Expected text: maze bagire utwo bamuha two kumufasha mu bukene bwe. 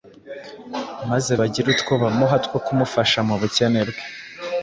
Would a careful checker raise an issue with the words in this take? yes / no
no